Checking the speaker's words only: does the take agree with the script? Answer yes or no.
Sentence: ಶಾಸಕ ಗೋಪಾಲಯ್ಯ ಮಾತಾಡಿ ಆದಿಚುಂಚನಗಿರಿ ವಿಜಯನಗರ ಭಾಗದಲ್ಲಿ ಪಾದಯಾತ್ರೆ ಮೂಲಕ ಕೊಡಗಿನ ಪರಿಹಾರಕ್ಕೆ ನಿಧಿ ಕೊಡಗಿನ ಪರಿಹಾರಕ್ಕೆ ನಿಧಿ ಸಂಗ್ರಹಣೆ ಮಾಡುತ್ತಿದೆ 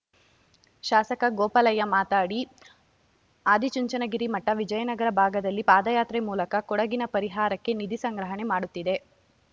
no